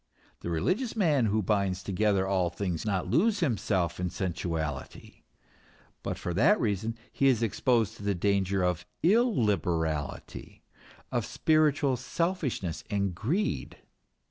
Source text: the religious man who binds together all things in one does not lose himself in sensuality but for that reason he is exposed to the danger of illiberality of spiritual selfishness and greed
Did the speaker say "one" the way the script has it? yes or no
no